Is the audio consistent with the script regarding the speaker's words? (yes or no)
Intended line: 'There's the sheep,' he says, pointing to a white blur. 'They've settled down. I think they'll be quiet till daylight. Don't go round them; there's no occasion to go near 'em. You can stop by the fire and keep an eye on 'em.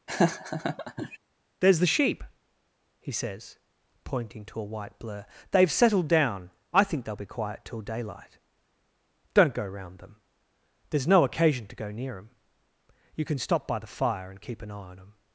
yes